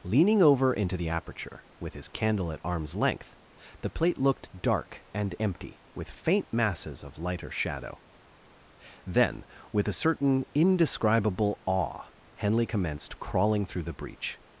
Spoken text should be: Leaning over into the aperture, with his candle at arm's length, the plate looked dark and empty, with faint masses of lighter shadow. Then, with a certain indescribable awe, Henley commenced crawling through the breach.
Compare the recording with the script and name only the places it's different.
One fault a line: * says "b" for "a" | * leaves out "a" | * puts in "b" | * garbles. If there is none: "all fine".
all fine